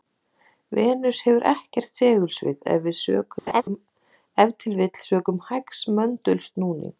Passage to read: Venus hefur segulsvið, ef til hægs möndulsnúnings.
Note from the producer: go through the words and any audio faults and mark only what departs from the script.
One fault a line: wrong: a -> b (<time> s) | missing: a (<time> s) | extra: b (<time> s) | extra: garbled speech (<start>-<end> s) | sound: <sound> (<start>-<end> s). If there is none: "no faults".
extra: ekkert (1.5 s)
sound: laugh (3.5-3.6 s)
extra: vill sökum (4.8 s)